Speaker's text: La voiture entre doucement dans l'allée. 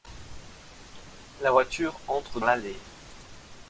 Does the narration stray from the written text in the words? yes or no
yes